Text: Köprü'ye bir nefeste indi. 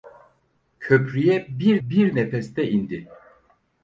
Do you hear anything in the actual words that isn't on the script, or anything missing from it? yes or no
yes